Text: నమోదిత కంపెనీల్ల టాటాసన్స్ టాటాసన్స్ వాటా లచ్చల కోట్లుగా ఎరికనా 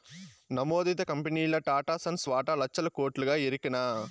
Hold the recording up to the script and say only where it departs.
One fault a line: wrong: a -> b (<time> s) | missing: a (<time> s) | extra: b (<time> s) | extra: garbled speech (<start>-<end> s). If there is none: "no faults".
missing: టాటాసన్స్ (2.2 s)